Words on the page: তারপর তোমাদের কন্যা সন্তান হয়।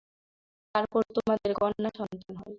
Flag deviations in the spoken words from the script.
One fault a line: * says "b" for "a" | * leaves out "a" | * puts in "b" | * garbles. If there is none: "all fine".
all fine